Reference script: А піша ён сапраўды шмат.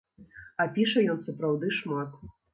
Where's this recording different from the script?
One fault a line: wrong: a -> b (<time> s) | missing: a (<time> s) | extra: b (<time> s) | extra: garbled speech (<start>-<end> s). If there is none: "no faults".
no faults